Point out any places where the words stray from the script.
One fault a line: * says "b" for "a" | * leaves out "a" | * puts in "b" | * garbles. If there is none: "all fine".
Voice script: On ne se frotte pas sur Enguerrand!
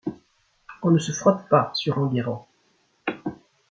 all fine